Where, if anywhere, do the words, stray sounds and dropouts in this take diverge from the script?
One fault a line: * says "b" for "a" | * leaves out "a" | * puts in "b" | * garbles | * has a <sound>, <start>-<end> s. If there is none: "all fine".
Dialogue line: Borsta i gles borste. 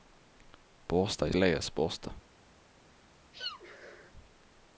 * has a sneeze, 3.3-4.1 s